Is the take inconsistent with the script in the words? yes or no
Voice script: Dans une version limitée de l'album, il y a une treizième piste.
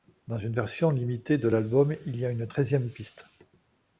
no